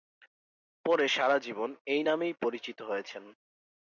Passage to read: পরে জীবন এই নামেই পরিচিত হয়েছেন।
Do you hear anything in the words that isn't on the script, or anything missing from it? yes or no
yes